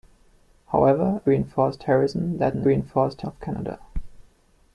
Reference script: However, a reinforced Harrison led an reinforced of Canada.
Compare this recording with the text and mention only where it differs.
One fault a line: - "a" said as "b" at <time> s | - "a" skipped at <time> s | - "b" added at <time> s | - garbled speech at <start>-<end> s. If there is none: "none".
none